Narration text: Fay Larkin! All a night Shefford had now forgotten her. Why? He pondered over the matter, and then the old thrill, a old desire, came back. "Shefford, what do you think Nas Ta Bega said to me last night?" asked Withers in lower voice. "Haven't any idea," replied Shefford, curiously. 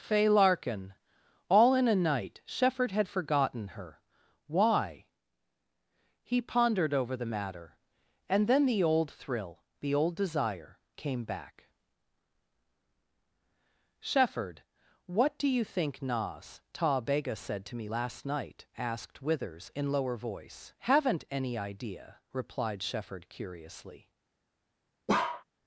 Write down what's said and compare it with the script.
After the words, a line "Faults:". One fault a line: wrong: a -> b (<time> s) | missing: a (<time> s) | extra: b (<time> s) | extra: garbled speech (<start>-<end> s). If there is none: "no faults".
Fay Larkin! All in a night Shefford had forgotten her. Why? He pondered over the matter, and then the old thrill, the old desire, came back. "Shefford, what do you think Nas Ta Bega said to me last night?" asked Withers in lower voice. "Haven't any idea," replied Shefford, curiously.
Faults:
extra: in (1.8 s)
missing: now (3.1 s)
wrong: a -> the (9.8 s)